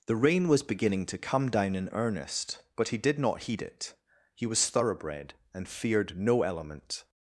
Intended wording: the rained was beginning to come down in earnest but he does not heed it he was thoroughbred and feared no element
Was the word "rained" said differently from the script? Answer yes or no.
yes